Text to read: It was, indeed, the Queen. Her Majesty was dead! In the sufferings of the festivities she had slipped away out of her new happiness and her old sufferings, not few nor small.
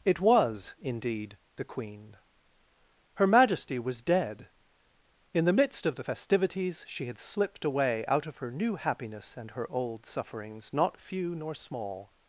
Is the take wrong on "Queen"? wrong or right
right